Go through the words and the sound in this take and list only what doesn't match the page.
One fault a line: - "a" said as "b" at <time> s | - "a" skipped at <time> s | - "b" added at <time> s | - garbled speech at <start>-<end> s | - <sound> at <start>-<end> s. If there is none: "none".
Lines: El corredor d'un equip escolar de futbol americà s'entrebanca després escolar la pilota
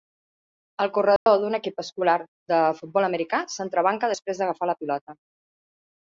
- dropout at 1.2-1.3 s
- "escolar" said as "d'agafar" at 4.4 s